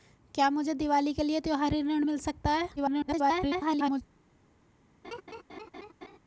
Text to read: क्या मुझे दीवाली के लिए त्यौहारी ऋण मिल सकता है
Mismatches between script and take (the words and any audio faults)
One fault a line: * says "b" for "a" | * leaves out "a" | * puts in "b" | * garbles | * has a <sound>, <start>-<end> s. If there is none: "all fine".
* garbles
* has a laugh, 5.0-6.2 s